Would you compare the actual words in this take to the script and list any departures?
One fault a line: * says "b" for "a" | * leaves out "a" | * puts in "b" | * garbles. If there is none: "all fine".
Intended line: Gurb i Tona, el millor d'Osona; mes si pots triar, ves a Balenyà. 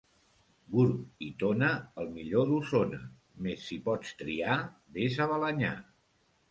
all fine